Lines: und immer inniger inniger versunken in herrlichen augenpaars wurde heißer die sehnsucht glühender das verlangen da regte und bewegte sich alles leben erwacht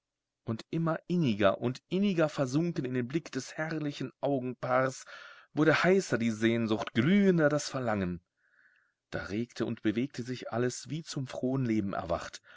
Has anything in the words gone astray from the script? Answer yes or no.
yes